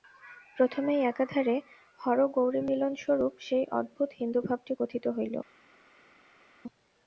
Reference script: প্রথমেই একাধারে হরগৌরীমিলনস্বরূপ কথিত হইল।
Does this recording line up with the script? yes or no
no